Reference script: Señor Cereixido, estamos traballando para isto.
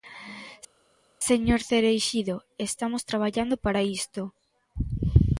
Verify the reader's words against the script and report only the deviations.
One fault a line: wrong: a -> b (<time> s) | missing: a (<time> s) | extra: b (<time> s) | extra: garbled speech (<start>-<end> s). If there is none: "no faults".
no faults